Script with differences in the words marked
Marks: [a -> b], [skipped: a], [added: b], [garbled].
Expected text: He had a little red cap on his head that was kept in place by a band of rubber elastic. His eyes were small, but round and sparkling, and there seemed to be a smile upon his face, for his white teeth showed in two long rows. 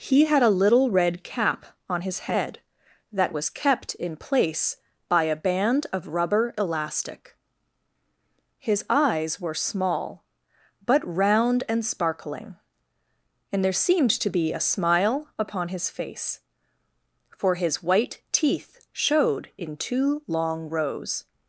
He had a little red cap on his head that was kept in place by a band of rubber elastic. His eyes were small, but round and sparkling, and there seemed to be a smile upon his face, for his white teeth showed in two long rows.